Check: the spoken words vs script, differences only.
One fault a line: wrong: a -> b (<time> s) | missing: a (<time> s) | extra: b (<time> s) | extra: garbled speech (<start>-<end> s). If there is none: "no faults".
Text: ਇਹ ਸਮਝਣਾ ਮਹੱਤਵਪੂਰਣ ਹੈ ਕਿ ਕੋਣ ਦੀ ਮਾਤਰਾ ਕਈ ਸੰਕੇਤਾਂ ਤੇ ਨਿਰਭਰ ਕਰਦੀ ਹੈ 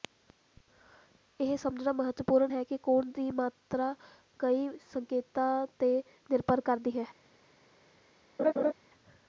no faults